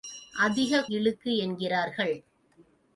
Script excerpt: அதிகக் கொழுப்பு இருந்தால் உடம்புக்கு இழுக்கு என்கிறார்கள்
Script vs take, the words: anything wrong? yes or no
yes